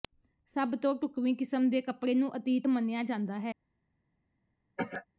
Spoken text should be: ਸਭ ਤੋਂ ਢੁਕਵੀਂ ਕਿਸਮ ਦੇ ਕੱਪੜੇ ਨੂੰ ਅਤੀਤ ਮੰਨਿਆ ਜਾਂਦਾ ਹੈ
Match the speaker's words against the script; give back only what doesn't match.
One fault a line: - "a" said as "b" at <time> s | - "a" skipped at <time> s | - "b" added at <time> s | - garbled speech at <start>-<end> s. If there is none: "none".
none